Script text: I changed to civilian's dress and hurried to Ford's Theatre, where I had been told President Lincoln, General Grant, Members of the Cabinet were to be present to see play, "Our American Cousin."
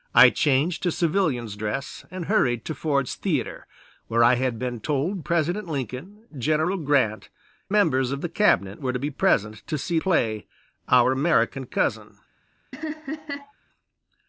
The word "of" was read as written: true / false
true